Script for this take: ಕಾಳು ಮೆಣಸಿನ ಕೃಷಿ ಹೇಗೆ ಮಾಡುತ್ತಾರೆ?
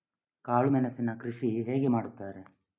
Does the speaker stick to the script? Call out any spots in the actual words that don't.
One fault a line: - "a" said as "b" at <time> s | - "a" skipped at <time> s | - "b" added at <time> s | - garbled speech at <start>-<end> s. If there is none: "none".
none